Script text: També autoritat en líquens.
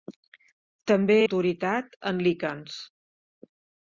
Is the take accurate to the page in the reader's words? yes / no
yes